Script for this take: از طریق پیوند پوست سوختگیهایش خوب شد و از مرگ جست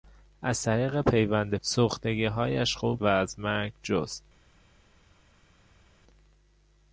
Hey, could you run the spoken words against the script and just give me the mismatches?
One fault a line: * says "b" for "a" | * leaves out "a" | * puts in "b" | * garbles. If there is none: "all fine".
* leaves out "پوست"
* leaves out "شد"